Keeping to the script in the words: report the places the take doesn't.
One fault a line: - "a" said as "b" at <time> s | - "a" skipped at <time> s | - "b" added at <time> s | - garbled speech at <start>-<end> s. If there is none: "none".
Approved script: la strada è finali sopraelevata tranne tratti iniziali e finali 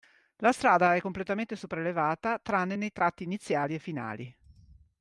- "finali" said as "completamente" at 1.0 s
- "nei" added at 2.8 s